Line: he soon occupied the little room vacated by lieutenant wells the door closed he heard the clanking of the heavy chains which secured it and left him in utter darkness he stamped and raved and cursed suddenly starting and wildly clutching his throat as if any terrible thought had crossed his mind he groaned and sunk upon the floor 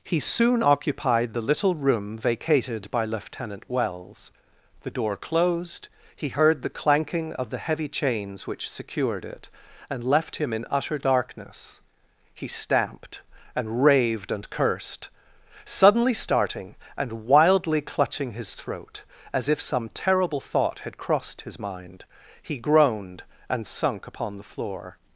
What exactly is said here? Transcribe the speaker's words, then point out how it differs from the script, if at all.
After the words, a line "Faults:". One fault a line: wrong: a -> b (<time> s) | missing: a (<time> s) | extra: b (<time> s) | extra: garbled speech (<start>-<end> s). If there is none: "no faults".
he soon occupied the little room vacated by lieutenant wells the door closed he heard the clanking of the heavy chains which secured it and left him in utter darkness he stamped and raved and cursed suddenly starting and wildly clutching his throat as if some terrible thought had crossed his mind he groaned and sunk upon the floor
Faults:
wrong: any -> some (19.6 s)